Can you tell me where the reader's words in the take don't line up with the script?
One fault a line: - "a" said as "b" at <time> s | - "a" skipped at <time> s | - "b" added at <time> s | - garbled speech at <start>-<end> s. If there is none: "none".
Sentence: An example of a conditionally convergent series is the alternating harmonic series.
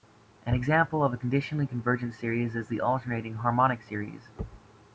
none